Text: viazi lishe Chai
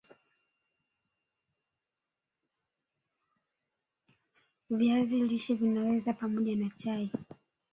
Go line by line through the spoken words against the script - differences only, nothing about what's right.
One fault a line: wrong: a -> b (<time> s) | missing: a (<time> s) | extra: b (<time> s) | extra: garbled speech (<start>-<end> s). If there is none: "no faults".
extra: Vinaweza pamoja na (5.5 s)